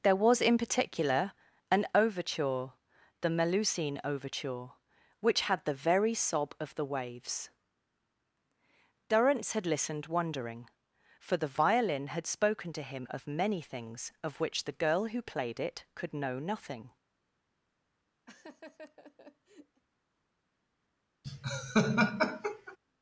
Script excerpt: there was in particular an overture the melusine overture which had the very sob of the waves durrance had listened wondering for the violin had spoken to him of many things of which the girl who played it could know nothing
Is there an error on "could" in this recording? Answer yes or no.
no